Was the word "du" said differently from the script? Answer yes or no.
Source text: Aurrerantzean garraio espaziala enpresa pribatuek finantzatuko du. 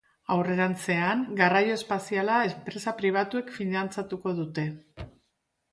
yes